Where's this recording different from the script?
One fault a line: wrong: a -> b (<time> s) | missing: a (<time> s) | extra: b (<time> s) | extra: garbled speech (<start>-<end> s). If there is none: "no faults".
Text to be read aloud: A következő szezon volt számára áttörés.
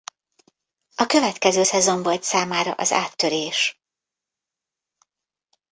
extra: az (2.7 s)